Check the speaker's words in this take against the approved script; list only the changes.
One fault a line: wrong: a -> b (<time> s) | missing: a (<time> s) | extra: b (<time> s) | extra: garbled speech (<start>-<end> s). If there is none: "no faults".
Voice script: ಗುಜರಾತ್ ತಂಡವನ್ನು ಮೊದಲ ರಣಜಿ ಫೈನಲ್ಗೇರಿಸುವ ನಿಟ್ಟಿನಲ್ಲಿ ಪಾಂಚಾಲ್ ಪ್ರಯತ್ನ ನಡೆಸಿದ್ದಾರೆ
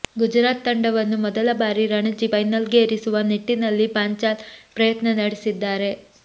extra: ಬಾರಿ (1.6 s)